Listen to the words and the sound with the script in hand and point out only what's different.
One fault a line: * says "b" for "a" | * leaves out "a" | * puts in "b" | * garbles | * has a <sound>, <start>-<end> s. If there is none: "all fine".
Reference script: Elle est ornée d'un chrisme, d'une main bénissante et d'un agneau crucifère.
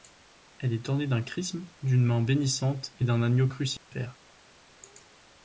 * has a dropout, 3.8-3.9 s